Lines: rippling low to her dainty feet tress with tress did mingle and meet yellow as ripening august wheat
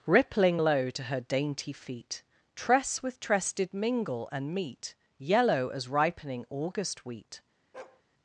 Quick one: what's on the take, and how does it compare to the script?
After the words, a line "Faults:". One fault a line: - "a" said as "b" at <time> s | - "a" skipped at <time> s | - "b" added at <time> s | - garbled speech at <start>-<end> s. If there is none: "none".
rippling low to her dainty feet tress with tress did mingle and meet yellow as ripening august wheat
Faults:
none